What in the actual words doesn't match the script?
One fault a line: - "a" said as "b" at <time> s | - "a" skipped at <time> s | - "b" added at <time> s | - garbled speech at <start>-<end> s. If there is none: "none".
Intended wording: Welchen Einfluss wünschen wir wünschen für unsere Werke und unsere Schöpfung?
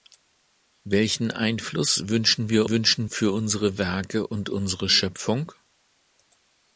none